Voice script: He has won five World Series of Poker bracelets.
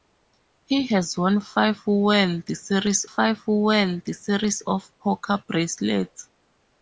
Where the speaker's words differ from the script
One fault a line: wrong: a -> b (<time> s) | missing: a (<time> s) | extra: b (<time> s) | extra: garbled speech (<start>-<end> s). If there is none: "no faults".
extra: five World Series (3.0 s)